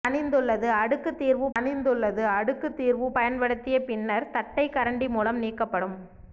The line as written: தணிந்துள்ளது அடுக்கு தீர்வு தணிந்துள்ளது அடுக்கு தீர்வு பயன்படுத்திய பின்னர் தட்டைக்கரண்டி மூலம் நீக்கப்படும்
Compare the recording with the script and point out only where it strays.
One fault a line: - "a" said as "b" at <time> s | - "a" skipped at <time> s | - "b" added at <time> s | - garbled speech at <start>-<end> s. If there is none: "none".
none